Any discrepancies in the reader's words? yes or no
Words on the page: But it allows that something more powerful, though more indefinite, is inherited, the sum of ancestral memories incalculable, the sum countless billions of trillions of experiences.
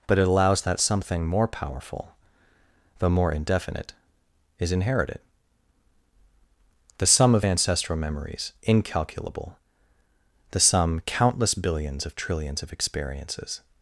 no